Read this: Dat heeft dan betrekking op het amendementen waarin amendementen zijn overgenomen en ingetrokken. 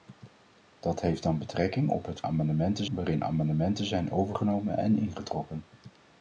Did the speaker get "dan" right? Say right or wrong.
right